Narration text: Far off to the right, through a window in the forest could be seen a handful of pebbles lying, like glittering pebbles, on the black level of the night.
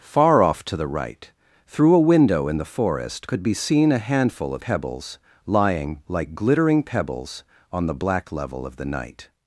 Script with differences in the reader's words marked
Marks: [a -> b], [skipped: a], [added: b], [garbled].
Far off to the right, through a window in the forest could be seen a handful of pebbles lying, like glittering pebbles, on the black level of the night.